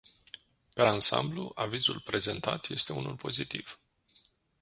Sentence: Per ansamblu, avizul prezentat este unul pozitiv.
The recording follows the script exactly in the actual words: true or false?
true